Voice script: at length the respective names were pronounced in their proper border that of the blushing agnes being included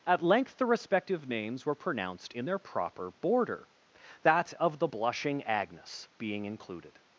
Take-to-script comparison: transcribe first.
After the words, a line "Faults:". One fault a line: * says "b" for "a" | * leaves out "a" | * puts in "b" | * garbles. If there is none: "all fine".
at length the respective names were pronounced in their proper border that of the blushing agnes being included
Faults:
all fine